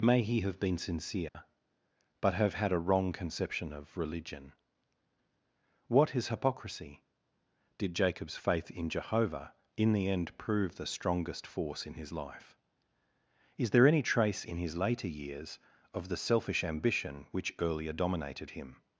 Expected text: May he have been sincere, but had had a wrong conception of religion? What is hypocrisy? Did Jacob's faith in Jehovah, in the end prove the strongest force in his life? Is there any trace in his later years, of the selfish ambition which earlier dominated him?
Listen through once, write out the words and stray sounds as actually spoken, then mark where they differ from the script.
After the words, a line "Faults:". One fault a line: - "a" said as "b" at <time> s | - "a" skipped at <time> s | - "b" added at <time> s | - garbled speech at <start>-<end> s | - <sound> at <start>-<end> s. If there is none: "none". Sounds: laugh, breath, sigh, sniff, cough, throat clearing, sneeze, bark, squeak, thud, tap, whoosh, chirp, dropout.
May he have been sincere, but have had a wrong conception of religion? What is hypocrisy? Did Jacob's faith in Jehovah, in the end prove the strongest force in his life? Is there any trace in his later years, of the selfish ambition which earlier dominated him?
Faults:
- dropout at 1.3-1.3 s
- "had" said as "have" at 2.3 s